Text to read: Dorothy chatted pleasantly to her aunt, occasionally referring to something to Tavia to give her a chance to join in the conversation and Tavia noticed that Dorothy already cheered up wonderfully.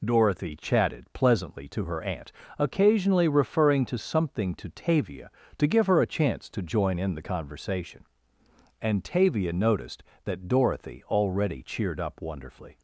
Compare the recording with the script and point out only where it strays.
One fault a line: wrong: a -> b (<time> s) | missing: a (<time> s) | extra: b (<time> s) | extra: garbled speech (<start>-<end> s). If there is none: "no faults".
no faults